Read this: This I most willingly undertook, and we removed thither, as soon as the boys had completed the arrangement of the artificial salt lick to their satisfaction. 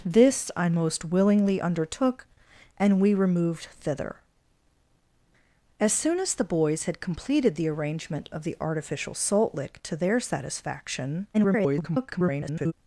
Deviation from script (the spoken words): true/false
true